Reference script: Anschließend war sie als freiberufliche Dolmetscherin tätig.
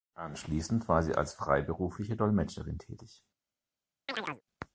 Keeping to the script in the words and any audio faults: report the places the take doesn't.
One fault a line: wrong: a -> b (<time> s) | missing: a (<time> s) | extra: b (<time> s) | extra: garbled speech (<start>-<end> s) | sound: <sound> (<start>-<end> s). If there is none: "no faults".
sound: chirp (4.1-4.4 s)